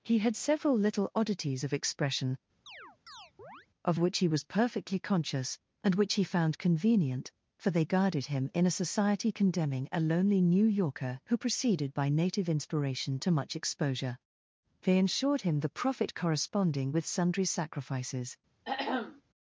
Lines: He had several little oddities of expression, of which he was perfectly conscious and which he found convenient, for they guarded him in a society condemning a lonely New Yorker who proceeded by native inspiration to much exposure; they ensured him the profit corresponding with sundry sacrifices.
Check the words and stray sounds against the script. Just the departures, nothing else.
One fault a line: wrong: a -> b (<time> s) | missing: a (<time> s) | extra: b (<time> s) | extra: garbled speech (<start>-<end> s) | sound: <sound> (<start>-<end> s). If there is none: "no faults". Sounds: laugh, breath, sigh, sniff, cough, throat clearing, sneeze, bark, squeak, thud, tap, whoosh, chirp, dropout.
sound: chirp (2.7-3.7 s)
sound: throat clearing (18.6-19.2 s)